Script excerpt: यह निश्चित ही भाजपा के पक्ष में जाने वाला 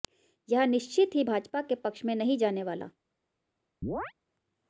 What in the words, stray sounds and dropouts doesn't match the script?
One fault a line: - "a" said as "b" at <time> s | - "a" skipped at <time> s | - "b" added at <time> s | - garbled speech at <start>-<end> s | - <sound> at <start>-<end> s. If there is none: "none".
- "नहीं" added at 2.1 s
- chirp at 3.8-4.1 s